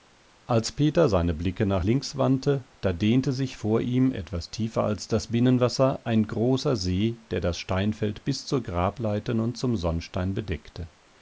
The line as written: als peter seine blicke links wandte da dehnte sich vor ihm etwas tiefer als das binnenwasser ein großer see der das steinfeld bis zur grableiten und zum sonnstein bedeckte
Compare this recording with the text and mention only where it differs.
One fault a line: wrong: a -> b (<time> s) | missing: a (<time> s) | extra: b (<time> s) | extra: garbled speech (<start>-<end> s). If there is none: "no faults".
extra: nach (1.7 s)